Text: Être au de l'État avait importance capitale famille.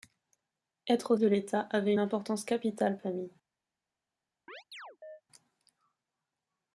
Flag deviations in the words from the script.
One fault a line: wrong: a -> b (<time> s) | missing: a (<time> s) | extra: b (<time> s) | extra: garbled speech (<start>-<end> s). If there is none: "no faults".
no faults